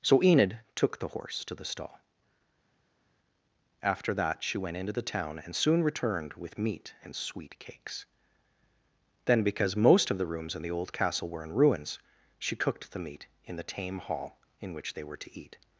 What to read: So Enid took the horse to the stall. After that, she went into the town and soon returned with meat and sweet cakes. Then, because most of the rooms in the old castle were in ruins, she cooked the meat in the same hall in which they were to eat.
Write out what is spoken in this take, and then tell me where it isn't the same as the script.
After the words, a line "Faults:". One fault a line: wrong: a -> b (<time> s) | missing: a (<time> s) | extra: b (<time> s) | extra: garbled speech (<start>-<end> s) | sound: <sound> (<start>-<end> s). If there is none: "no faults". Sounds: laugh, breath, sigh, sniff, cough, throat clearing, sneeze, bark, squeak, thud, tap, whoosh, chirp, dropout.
So Enid took the horse to the stall. After that, she went into the town and soon returned with meat and sweet cakes. Then, because most of the rooms in the old castle were in ruins, she cooked the meat in the tame hall in which they were to eat.
Faults:
wrong: same -> tame (13.6 s)